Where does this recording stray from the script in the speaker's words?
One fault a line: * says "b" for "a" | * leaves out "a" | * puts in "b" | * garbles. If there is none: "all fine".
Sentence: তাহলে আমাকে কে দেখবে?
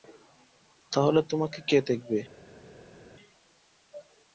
* says "তোমাকে" for "আমাকে"